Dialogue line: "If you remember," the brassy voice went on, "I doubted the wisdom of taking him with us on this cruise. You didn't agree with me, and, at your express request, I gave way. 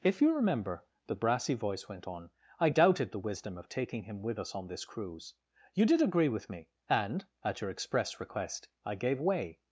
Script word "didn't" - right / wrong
wrong